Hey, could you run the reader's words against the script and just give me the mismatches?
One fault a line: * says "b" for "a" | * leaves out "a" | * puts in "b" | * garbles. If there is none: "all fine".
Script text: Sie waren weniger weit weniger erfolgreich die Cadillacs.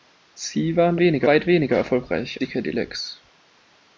all fine